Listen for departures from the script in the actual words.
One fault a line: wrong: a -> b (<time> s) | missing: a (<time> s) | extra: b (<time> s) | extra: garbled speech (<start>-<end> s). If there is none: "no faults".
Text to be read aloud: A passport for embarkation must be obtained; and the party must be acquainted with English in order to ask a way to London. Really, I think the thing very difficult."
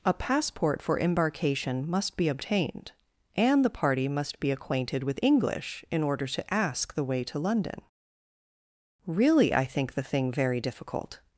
wrong: a -> the (6.9 s)